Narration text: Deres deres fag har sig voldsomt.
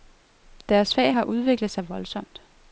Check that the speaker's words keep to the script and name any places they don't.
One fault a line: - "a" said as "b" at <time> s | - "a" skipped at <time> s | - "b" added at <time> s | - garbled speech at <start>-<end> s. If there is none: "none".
- "deres" skipped at 0.9 s
- "udviklet" added at 1.2 s